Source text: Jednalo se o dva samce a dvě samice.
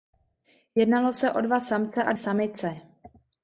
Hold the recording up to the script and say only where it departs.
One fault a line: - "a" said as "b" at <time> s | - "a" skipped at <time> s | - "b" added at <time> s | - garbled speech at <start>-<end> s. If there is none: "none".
- "dvě" skipped at 2.1 s